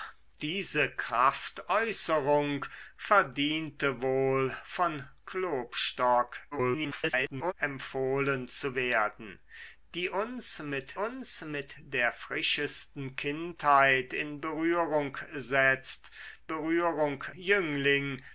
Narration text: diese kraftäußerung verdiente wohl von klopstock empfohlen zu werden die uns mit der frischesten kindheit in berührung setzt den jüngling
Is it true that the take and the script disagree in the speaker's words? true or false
true